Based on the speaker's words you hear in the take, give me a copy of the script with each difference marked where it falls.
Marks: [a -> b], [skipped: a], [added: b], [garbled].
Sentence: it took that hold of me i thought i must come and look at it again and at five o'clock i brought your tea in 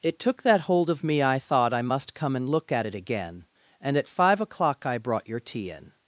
it took that hold of me i thought i must come and look at it again and at five o'clock i brought your tea in